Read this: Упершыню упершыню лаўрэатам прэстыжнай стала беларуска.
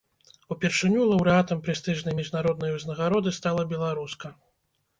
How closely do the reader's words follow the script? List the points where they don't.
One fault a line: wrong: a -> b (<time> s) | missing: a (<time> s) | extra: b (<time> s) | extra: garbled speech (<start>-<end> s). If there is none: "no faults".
missing: упершыню (1.0 s)
extra: міжнароднай узнагароды (2.2 s)